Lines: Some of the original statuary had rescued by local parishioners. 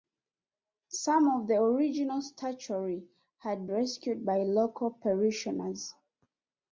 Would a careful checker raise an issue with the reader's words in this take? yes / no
no